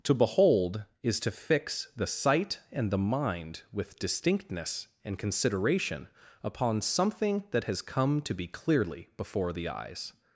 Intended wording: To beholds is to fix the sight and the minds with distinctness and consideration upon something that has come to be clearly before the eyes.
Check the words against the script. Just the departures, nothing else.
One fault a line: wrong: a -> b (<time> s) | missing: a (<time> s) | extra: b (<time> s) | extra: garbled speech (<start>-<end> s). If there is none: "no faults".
wrong: beholds -> behold (0.1 s)
wrong: minds -> mind (3.0 s)